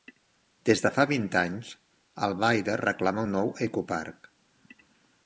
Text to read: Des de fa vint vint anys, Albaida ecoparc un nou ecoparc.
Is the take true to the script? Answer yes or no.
no